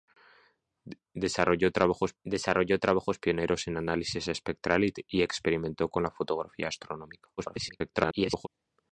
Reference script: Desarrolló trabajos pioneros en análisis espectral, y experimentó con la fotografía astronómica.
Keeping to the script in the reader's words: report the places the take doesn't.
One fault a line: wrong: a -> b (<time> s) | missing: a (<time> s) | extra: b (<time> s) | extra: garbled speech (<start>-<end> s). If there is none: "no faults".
extra: desarrolló trabajos (2.2 s)
extra: garbled speech (7.4-8.5 s)